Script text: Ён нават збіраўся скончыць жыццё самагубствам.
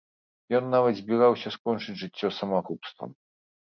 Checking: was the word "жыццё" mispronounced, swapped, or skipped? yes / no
no